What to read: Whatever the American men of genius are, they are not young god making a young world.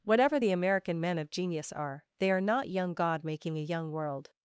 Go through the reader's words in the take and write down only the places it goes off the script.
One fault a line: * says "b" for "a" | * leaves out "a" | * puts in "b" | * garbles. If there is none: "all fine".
all fine